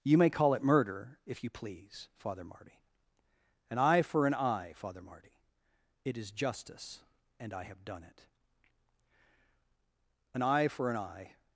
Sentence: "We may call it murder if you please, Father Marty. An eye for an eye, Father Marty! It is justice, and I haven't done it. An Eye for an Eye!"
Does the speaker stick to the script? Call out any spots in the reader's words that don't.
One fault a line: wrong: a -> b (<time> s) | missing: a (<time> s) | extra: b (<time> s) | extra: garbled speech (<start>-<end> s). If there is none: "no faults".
wrong: We -> You (0.0 s)
wrong: haven't -> have (7.6 s)